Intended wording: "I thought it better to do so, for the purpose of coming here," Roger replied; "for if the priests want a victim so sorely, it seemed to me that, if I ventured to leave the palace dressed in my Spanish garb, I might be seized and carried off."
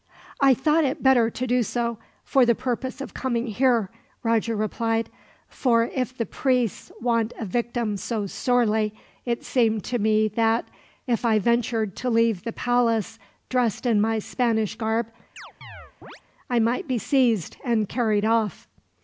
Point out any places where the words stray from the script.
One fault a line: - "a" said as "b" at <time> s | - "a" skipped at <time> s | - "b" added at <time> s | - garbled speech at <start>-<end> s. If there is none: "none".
none